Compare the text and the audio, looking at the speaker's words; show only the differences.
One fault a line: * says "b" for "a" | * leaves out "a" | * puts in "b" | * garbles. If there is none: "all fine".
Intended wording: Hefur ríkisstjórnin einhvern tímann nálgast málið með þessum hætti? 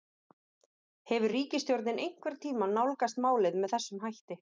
all fine